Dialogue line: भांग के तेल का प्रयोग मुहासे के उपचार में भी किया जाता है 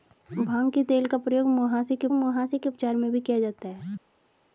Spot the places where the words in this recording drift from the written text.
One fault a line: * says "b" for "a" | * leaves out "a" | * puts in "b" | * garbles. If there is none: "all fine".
* puts in "मुहासे के"